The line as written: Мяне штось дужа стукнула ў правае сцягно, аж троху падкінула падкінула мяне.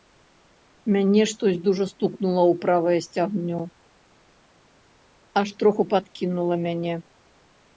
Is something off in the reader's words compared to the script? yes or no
yes